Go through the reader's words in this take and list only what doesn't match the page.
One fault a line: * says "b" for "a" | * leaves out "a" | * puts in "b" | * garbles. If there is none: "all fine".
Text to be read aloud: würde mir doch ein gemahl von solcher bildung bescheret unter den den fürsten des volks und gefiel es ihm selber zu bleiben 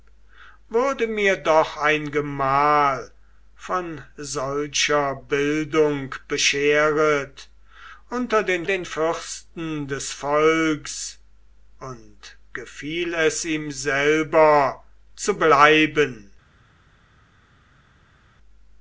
all fine